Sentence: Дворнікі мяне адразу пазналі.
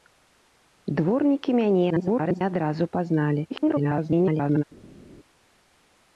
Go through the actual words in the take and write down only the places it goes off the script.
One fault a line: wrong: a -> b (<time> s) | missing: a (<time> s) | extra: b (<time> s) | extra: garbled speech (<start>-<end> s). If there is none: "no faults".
extra: garbled speech (1.9-2.4 s)
extra: garbled speech (3.5-4.6 s)